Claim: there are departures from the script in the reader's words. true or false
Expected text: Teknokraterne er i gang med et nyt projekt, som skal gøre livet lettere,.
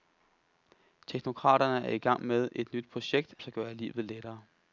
true